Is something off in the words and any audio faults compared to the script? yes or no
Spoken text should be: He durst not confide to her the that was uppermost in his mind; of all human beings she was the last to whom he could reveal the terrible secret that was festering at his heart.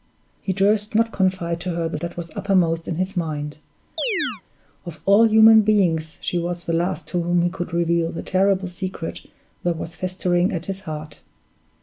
yes